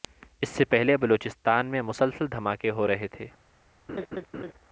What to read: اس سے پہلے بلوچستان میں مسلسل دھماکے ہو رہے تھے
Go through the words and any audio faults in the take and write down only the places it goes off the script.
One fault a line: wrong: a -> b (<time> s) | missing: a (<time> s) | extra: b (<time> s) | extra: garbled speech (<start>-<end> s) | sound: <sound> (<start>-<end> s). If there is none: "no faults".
sound: laugh (3.9-4.5 s)